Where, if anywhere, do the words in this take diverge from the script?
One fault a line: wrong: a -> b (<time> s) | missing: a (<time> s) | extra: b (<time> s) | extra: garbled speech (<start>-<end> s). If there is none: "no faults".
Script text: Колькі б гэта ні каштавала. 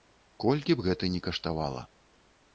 no faults